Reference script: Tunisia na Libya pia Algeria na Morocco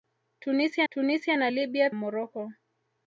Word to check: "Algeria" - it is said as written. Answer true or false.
false